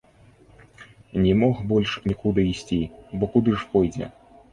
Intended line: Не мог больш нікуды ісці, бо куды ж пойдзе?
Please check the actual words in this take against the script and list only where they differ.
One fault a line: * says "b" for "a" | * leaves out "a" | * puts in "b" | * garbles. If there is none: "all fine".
all fine